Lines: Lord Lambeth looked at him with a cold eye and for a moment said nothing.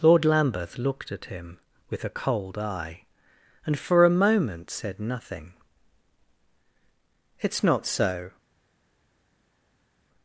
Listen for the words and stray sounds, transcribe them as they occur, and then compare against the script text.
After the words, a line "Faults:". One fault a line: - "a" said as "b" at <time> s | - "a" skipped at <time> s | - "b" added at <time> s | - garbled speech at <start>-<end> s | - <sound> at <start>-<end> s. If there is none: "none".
Lord Lambeth looked at him with a cold eye and for a moment said nothing. "It's not so
Faults:
- "It's not so" added at 7.4 s